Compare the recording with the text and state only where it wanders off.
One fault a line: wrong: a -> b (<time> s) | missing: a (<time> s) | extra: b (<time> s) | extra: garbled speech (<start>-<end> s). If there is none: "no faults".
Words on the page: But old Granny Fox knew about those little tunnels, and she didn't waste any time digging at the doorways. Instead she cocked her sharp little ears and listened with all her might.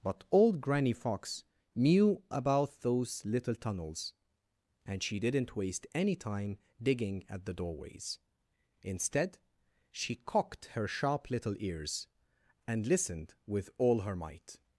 no faults